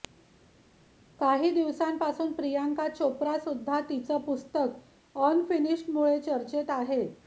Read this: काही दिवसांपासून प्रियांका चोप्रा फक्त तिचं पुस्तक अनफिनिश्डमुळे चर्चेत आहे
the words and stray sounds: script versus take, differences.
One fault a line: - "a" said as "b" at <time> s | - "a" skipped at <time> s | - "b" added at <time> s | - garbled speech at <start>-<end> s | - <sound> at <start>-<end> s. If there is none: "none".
- "फक्त" said as "सुद्धा" at 3.4 s